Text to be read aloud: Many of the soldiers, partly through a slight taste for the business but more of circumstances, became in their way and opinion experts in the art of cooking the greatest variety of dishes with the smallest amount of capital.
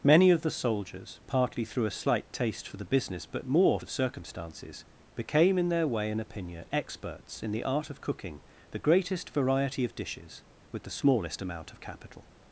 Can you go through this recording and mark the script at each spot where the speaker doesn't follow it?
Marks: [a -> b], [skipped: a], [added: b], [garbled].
Many of the soldiers, partly through a slight taste for the business but more of circumstances, became in their way and opinion experts in the art of cooking the greatest variety of dishes with the smallest amount of capital.